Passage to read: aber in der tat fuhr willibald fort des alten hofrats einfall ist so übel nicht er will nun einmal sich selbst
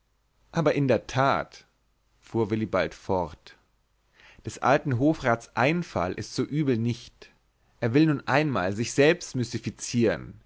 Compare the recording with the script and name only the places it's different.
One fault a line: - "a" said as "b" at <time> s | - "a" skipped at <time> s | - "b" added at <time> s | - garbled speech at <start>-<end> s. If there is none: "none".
none